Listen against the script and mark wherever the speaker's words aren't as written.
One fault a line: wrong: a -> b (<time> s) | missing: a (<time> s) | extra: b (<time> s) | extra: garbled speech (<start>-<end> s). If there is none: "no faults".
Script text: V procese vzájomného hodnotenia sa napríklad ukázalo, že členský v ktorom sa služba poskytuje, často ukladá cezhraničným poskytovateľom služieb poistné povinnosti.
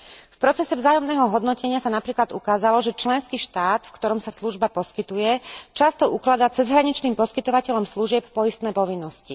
extra: štát (3.4 s)